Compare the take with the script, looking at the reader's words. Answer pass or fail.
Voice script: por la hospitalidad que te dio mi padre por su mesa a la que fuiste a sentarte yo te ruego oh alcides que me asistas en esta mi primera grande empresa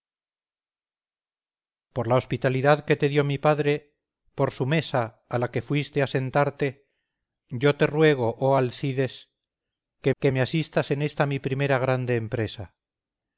fail